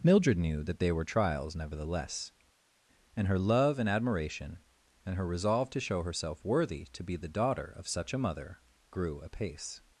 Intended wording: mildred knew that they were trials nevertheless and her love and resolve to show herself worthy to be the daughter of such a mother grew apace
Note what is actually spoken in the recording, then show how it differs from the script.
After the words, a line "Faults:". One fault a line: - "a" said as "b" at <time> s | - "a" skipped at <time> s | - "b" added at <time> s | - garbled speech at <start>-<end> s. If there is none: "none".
mildred knew that they were trials nevertheless and her love and admiration and her resolve to show herself worthy to be the daughter of such a mother grew apace
Faults:
- "admiration and her" added at 3.9 s